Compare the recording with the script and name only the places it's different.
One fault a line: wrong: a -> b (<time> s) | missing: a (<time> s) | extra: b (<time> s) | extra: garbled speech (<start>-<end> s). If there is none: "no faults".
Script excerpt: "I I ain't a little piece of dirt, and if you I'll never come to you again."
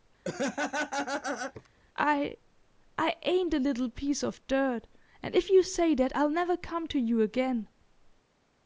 extra: say that (5.6 s)